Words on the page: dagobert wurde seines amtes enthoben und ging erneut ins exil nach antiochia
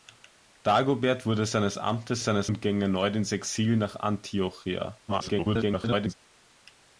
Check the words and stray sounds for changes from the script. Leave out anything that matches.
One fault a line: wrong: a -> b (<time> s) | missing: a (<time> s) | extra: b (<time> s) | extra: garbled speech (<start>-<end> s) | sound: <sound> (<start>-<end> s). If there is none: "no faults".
wrong: enthoben -> seines (2.2 s)
extra: garbled speech (5.1-6.1 s)